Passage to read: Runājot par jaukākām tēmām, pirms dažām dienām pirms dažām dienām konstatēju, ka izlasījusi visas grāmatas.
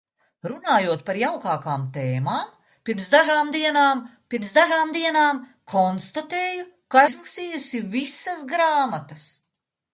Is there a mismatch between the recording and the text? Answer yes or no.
no